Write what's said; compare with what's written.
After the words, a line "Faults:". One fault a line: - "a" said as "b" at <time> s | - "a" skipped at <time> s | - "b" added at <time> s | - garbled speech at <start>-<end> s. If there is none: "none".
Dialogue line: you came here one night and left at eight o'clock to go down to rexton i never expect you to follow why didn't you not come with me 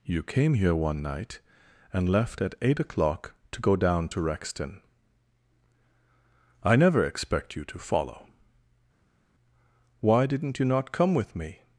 you came here one night and left at eight o'clock to go down to rexton i never expect you to follow why didn't you not come with me
Faults:
none